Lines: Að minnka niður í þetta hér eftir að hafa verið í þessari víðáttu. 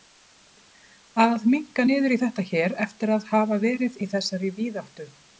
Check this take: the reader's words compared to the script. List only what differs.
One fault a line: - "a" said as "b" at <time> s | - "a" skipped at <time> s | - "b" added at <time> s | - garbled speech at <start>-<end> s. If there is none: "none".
none